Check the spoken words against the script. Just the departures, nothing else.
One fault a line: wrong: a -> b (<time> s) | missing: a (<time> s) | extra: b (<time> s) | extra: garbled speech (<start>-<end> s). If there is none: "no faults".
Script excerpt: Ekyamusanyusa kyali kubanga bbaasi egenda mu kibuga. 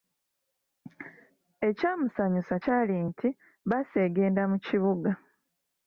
wrong: kubanga -> nti (3.1 s)